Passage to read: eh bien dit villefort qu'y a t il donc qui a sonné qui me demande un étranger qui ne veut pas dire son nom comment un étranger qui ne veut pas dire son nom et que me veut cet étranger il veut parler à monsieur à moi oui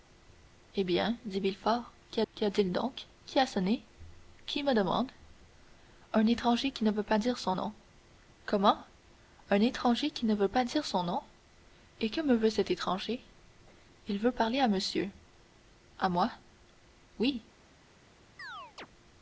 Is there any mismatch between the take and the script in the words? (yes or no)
yes